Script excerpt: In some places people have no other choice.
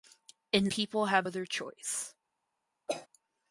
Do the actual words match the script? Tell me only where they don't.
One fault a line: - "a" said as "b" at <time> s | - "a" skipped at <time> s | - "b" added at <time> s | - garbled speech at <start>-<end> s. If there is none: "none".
- "some places" skipped at 0.7 s
- "no" skipped at 1.3 s